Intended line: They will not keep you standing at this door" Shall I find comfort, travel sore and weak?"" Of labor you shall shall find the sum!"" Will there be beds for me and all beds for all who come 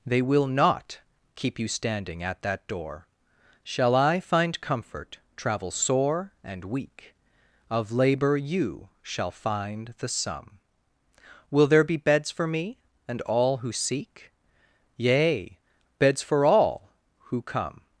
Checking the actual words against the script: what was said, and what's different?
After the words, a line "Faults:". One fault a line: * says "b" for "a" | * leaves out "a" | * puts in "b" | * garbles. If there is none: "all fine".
They will not keep you standing at that door" Shall I find comfort, travel sore and weak?"" Of labor you shall find the sum!"" Will there be beds for me and all who seek?"" Yea, beds for all who come
Faults:
* says "that" for "this"
* leaves out "shall"
* puts in "who seek Yea"